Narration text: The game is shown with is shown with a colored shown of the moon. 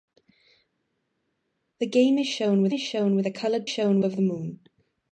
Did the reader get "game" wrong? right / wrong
right